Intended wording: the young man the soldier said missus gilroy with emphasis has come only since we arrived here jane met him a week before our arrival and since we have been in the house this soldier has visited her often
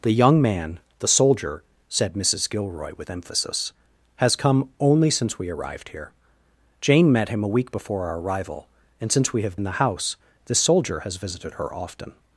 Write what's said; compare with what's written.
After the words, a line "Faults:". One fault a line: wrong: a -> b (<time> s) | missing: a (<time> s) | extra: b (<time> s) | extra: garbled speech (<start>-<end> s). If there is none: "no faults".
the young man the soldier said missus gilroy with emphasis has come only since we arrived here jane met him a week before our arrival and since we have in the house this soldier has visited her often
Faults:
missing: been (9.6 s)